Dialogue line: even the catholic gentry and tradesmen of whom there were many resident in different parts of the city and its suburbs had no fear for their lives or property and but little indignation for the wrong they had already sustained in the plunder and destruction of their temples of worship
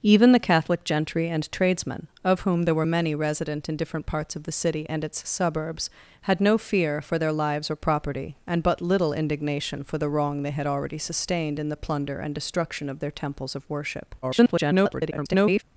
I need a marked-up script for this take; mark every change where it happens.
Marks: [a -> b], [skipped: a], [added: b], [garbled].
even the catholic gentry and tradesmen of whom there were many resident in different parts of the city and its suburbs had no fear for their lives or property and but little indignation for the wrong they had already sustained in the plunder and destruction of their temples of worship [garbled]